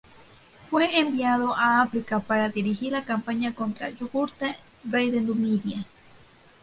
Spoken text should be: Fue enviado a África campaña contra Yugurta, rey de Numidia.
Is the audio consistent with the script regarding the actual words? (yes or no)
no